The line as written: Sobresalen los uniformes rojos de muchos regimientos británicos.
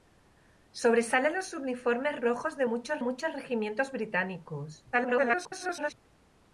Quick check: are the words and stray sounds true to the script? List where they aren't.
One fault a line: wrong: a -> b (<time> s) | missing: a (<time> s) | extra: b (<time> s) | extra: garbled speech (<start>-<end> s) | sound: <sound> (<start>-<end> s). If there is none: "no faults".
extra: muchos (3.0 s)
extra: garbled speech (4.9-5.9 s)